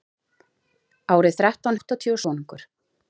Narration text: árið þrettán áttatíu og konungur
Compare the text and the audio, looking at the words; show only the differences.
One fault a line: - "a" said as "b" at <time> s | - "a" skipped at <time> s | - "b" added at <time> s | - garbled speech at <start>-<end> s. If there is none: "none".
none